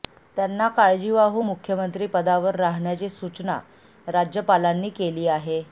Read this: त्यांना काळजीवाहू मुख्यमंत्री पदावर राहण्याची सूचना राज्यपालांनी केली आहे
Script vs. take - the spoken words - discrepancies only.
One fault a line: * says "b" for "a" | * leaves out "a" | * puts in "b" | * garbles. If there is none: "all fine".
all fine